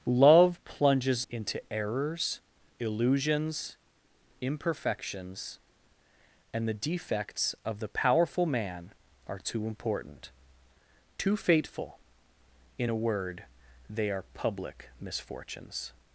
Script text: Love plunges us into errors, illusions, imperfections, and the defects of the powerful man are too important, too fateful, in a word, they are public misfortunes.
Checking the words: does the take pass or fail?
fail